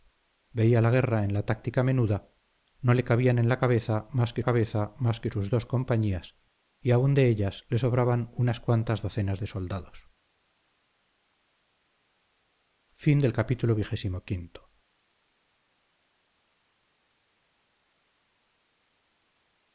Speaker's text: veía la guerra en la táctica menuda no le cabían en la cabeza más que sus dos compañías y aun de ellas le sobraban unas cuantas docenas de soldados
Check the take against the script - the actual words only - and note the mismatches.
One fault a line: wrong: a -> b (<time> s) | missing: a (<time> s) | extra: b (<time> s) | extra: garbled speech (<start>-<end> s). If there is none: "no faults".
extra: cabeza más que (4.4 s)